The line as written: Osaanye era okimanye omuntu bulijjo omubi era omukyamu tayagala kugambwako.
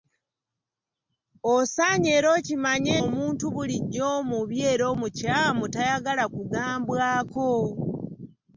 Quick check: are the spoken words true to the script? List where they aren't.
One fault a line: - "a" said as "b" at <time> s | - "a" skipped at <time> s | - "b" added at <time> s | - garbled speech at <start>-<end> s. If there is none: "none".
none